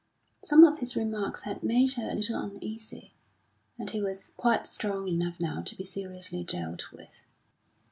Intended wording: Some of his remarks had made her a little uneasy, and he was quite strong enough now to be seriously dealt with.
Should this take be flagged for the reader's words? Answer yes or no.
no